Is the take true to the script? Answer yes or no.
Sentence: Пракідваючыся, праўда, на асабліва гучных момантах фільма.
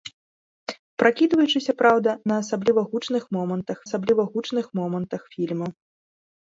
no